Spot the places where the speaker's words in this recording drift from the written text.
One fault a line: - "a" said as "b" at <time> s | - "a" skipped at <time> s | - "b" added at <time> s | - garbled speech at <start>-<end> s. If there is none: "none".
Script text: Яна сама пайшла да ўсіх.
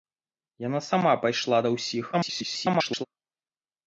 - garbled speech at 2.1-3.1 s